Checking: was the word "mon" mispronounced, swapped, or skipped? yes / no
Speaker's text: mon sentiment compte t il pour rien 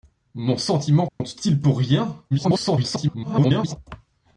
no